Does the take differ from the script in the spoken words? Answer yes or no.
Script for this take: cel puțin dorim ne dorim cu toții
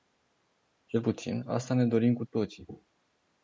yes